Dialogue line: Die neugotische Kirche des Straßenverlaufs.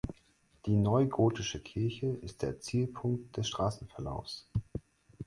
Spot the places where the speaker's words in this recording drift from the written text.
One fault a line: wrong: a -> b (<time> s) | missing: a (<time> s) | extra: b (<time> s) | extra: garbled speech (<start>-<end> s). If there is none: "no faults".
extra: ist der Zielpunkt (2.1 s)